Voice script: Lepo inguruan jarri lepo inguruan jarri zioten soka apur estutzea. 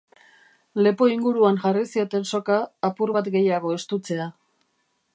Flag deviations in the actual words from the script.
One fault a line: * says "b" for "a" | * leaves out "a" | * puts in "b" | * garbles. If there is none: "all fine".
* leaves out "lepo inguruan jarri"
* puts in "bat gehiago"